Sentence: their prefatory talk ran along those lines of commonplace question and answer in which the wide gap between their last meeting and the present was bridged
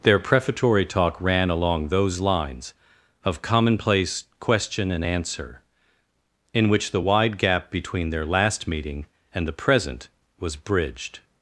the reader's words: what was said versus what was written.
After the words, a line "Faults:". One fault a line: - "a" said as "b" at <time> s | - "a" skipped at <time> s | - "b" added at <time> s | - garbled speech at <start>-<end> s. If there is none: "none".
their prefatory talk ran along those lines of commonplace question and answer in which the wide gap between their last meeting and the present was bridged
Faults:
none